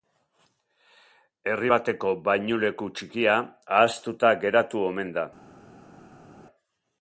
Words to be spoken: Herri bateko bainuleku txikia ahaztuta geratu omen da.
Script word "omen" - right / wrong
right